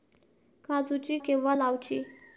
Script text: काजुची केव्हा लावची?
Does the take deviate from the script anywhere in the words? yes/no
no